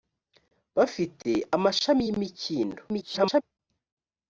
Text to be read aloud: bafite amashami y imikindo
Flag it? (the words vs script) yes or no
yes